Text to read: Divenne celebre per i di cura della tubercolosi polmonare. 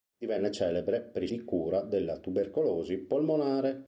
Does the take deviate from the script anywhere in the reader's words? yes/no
no